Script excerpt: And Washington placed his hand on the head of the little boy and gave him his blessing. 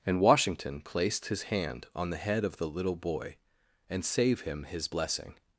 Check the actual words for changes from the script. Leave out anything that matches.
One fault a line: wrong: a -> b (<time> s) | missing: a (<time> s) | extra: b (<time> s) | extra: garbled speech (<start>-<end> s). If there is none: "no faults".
wrong: gave -> save (4.0 s)